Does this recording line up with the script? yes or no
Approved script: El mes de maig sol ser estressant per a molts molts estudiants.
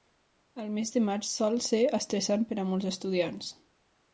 no